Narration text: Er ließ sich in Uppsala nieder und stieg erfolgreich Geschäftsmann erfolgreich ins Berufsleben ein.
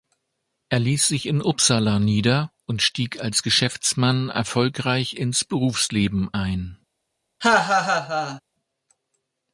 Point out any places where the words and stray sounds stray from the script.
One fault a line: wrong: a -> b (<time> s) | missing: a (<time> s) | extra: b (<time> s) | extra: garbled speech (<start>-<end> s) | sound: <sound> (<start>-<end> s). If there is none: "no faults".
wrong: erfolgreich -> als (3.2 s)
sound: laugh (7.4-8.4 s)